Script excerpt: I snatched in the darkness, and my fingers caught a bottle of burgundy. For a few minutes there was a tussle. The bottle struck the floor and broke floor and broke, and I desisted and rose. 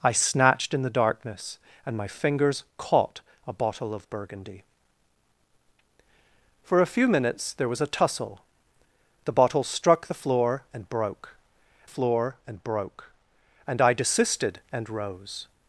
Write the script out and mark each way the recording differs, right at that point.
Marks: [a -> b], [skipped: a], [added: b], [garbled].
I snatched in the darkness, and my fingers caught a bottle of burgundy. For a few minutes there was a tussle. The bottle struck the floor and broke floor and broke, and I desisted and rose.